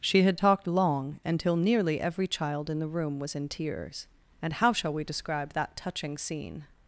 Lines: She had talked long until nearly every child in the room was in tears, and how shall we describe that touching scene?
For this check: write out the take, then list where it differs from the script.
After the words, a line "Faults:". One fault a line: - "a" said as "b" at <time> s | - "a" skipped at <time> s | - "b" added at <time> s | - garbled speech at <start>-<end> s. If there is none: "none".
She had talked long until nearly every child in the room was in tears, and how shall we describe that touching scene?
Faults:
none